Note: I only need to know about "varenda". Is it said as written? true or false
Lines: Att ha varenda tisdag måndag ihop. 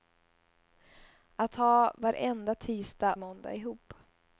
true